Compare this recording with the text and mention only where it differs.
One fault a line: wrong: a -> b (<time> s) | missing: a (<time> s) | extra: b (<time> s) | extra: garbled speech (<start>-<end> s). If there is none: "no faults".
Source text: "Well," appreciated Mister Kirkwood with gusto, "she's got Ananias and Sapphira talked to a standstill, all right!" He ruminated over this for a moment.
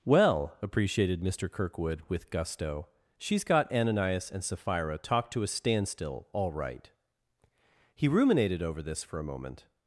no faults